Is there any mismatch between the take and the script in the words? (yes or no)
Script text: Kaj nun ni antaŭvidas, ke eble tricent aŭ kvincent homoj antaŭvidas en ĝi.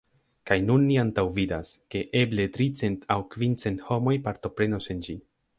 yes